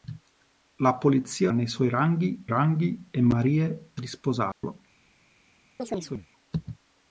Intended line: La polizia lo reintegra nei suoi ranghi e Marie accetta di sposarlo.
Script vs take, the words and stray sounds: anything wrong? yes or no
yes